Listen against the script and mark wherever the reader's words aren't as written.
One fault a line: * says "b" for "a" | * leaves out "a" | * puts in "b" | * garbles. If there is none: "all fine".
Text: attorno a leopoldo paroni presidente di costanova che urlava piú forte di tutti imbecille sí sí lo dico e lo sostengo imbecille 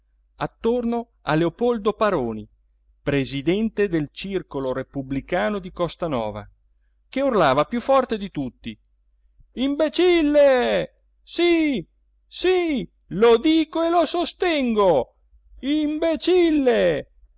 * puts in "del circolo repubblicano"